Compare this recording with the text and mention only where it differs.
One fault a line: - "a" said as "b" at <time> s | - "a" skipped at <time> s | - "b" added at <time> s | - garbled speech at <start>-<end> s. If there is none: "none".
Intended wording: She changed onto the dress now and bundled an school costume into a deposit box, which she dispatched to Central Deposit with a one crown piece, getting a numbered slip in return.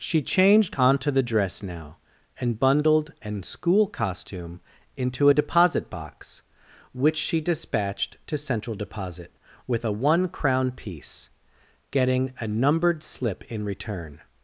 none